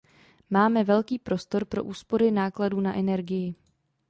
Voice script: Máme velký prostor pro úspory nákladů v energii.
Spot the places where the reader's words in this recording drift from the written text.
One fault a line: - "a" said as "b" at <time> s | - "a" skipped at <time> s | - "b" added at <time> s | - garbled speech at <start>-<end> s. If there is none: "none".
- "v" said as "na" at 2.8 s